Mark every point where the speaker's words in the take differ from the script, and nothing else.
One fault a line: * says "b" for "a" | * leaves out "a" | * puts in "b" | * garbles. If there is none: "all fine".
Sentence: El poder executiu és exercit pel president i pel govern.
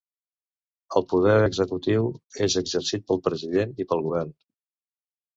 all fine